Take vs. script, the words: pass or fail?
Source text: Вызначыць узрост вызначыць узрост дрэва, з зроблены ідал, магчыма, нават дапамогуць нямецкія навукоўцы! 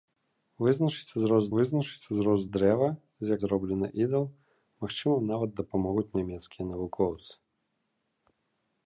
pass